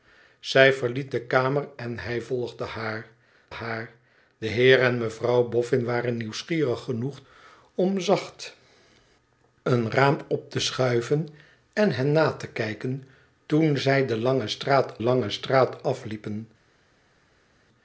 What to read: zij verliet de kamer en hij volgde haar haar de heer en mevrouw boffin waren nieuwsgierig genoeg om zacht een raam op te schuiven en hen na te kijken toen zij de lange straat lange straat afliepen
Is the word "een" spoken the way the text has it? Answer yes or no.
yes